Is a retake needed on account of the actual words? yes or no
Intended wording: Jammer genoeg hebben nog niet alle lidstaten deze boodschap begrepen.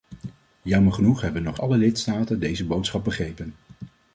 yes